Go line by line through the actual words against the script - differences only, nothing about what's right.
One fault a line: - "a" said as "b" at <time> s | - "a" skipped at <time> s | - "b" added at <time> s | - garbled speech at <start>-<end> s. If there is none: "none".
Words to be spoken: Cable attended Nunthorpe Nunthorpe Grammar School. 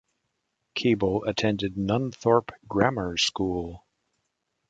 - "Nunthorpe" skipped at 2.5 s